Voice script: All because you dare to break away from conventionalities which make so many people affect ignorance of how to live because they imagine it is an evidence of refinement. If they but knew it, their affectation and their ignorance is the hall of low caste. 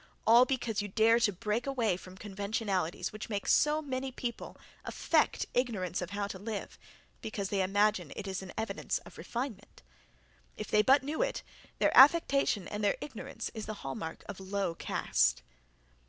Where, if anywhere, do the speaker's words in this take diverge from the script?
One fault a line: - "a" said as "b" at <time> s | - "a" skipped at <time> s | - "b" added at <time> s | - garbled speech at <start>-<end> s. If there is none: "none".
- "mark" added at 14.0 s